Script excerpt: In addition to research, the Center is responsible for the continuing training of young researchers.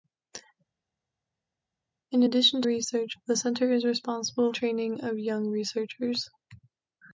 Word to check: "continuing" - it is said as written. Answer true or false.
false